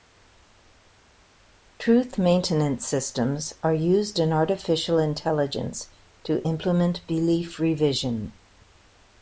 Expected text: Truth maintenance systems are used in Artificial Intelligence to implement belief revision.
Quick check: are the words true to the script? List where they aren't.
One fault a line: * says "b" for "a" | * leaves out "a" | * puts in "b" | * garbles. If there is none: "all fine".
all fine